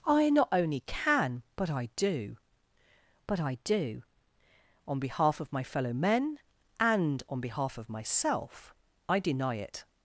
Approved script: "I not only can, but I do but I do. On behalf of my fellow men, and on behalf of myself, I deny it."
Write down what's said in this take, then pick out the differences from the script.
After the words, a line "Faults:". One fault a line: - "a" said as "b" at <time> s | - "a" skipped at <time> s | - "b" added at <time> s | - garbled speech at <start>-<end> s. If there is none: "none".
"I not only can, but I do but I do. On behalf of my fellow men, and on behalf of myself, I deny it."
Faults:
none